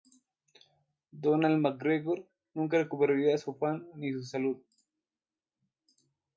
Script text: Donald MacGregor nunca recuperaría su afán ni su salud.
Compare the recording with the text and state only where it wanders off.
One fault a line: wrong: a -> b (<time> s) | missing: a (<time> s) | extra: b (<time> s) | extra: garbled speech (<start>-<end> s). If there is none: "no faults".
no faults